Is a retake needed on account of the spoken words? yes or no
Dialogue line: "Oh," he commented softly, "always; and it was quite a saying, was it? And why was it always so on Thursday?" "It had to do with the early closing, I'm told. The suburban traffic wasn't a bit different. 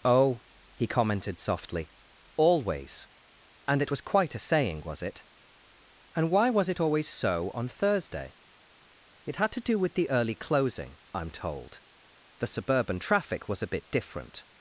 yes